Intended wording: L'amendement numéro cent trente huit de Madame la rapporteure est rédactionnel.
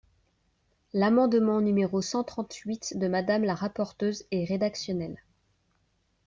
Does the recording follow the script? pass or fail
pass